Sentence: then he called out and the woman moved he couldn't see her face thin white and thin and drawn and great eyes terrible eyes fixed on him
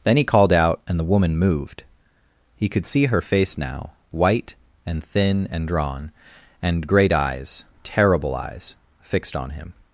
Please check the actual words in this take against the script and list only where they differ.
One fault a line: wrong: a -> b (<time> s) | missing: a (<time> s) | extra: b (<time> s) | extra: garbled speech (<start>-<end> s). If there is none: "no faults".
wrong: couldn't -> could (2.7 s)
wrong: thin -> now (3.6 s)